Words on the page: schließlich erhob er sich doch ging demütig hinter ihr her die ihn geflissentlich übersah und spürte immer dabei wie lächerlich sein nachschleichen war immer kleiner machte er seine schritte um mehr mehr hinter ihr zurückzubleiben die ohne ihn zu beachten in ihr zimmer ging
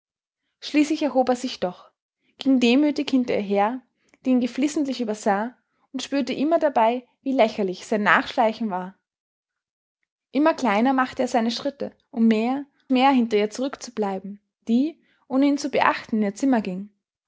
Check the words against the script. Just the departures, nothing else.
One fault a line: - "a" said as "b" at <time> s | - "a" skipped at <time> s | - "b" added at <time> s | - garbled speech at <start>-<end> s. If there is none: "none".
none